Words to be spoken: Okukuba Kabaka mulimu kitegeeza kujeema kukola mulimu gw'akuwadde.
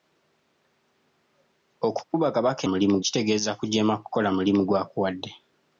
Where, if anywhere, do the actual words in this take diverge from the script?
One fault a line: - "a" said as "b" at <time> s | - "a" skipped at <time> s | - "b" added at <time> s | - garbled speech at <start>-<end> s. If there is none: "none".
none